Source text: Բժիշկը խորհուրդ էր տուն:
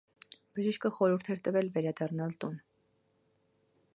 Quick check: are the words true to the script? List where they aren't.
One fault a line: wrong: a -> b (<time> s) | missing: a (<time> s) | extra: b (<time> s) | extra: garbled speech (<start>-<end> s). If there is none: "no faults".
extra: տվել վերադառնալ (1.5 s)